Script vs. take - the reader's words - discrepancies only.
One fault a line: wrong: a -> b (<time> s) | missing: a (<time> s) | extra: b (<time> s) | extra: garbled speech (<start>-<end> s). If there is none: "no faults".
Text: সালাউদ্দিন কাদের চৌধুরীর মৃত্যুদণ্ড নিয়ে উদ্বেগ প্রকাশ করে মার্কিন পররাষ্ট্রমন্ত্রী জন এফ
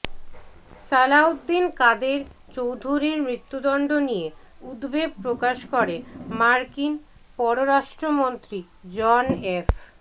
no faults